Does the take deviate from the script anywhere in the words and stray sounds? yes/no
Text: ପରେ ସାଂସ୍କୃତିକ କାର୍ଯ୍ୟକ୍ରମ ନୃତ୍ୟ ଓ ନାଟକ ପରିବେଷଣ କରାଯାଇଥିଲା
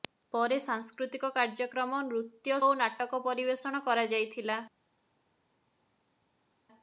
no